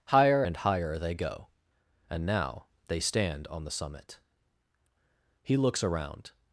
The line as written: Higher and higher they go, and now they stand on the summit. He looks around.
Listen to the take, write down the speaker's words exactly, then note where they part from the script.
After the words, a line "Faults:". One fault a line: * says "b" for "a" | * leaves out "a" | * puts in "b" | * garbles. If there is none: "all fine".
Higher and higher they go, and now they stand on the summit. He looks around.
Faults:
all fine